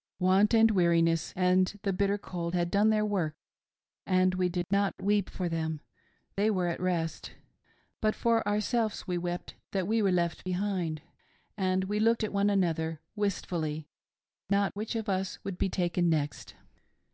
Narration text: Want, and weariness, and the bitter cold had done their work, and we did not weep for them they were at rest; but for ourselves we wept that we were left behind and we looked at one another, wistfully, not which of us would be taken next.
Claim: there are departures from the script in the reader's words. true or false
false